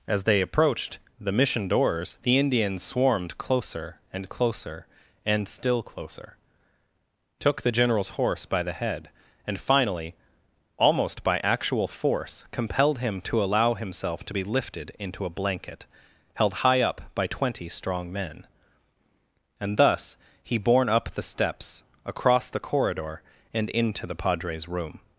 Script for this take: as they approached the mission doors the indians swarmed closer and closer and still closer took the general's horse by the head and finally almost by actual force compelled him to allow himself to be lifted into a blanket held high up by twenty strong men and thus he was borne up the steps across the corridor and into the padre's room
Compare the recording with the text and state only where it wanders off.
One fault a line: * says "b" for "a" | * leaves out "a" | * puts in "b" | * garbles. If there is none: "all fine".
* leaves out "was"